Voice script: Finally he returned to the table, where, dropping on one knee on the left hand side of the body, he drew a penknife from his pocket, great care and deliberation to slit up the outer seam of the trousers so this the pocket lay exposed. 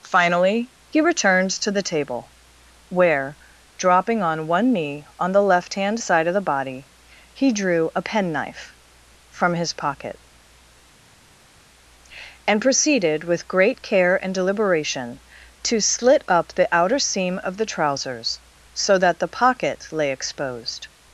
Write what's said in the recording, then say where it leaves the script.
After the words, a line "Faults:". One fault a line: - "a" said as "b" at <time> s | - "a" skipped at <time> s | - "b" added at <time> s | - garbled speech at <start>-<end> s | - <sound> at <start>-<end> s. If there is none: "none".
Finally he returned to the table, where, dropping on one knee on the left hand side of the body, he drew a penknife from his pocket, and proceeded with great care and deliberation to slit up the outer seam of the trousers so that the pocket lay exposed.
Faults:
- "and proceeded with" added at 12.4 s
- "this" said as "that" at 19.0 s